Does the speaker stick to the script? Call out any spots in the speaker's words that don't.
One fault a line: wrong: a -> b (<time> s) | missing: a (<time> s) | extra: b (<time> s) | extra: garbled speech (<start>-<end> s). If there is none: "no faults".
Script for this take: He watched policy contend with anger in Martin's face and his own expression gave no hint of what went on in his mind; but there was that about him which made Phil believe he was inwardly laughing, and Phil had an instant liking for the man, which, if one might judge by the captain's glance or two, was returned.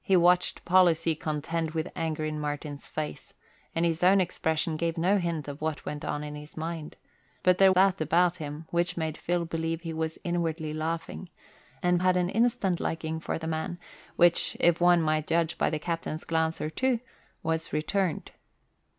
missing: was (7.7 s)
missing: Phil (12.0 s)